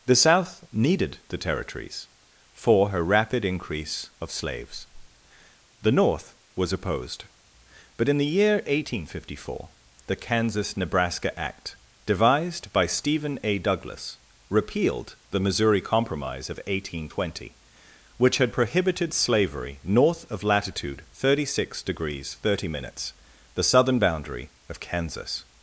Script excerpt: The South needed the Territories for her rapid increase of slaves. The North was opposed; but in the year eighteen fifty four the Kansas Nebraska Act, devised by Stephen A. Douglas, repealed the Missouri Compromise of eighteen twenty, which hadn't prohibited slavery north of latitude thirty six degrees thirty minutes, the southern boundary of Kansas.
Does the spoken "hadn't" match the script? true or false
false